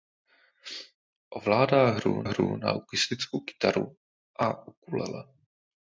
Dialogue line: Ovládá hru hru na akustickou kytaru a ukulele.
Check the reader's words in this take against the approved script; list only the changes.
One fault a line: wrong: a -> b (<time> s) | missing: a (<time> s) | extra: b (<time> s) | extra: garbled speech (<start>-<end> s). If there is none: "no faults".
no faults